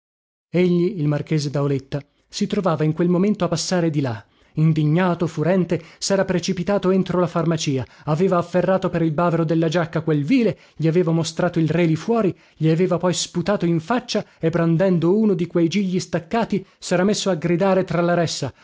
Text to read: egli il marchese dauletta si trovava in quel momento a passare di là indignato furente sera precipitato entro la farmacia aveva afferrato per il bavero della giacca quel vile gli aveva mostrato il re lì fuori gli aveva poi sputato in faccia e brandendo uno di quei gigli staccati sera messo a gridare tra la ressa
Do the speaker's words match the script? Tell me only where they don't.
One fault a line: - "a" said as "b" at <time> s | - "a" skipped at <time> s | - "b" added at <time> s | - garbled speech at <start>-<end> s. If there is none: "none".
none